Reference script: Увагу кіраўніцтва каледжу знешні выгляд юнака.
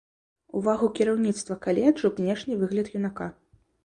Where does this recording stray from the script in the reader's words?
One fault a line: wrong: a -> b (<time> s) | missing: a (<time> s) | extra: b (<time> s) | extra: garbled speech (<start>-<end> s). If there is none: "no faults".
no faults